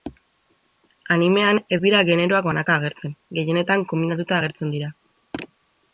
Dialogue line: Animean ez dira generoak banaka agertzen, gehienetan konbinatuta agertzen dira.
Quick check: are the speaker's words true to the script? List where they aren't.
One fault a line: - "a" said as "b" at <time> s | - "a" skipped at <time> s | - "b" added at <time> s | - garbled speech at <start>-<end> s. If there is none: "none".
none